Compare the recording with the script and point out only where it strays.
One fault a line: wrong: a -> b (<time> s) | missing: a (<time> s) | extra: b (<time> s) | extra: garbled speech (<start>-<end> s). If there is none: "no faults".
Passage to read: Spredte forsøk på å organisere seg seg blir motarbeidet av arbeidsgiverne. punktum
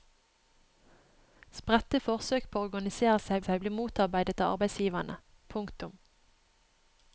no faults